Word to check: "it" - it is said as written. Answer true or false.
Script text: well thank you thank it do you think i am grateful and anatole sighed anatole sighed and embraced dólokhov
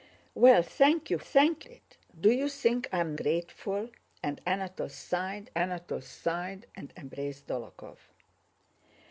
true